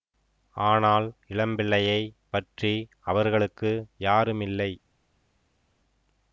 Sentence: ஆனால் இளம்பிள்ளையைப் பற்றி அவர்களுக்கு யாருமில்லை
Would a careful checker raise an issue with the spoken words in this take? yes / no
no